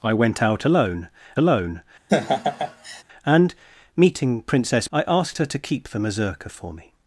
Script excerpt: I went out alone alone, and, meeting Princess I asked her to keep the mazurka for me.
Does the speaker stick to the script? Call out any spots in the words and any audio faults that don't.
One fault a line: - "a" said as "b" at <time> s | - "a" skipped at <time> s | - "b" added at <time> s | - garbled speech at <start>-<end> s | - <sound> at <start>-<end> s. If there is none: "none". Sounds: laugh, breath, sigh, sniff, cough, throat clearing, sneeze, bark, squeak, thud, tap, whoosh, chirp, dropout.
- laugh at 2.1-3.0 s